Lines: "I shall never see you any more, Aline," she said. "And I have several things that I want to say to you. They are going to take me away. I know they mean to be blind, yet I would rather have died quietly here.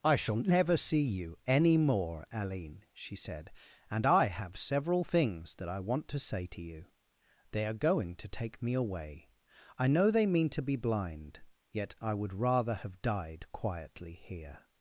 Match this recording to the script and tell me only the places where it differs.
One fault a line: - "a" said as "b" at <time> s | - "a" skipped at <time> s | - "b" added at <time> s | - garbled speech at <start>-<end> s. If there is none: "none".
none